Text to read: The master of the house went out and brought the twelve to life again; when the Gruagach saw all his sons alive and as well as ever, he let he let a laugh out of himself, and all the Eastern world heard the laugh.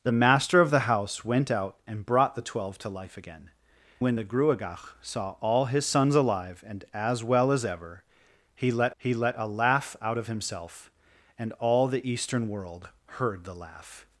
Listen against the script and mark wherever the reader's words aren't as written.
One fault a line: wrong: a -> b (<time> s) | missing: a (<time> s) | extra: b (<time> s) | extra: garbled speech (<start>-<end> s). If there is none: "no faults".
no faults